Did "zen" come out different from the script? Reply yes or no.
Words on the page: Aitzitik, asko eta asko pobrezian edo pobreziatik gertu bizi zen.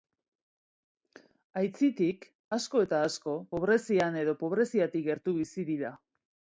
yes